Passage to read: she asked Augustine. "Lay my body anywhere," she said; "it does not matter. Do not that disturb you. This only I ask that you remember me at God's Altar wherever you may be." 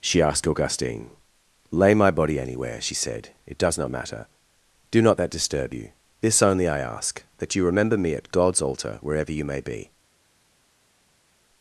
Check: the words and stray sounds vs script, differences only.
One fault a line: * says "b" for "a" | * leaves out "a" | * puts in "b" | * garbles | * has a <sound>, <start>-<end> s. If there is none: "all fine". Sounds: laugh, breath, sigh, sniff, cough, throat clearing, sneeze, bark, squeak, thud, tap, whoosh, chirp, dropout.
all fine